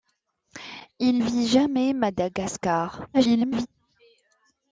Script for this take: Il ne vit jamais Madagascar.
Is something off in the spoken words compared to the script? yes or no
yes